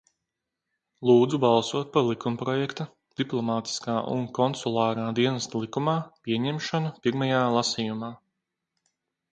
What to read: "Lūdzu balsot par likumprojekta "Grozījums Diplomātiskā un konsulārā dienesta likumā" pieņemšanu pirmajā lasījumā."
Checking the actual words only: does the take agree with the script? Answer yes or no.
no